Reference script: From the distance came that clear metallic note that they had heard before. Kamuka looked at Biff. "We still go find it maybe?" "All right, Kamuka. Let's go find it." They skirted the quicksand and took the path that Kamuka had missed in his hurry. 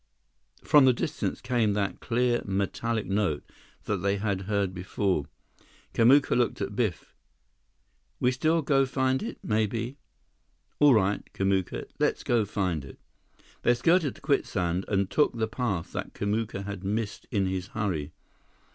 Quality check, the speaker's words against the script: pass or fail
pass